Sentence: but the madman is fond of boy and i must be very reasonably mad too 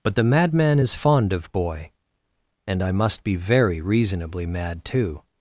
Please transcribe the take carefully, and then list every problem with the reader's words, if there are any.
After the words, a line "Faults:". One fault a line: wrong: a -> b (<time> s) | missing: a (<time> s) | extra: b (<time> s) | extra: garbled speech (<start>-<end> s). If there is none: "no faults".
but the madman is fond of boy and i must be very reasonably mad too
Faults:
no faults